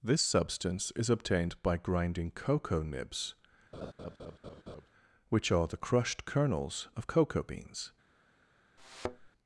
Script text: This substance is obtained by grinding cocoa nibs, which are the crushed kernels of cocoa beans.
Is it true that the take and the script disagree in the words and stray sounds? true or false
true